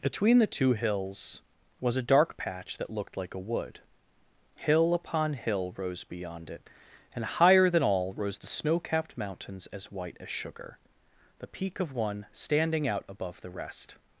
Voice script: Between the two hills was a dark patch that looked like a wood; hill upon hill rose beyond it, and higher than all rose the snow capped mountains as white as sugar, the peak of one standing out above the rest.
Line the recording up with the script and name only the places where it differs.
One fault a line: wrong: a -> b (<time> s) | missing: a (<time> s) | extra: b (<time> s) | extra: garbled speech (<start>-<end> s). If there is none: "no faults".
no faults